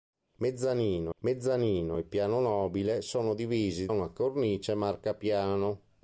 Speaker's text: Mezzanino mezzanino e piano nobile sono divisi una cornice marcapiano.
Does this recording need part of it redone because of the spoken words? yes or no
no